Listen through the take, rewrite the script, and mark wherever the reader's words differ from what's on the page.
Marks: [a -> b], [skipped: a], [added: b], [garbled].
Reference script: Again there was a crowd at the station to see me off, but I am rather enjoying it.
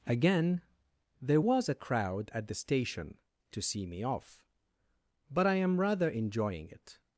Again there was a crowd at the station to see me off, but I am rather enjoying it.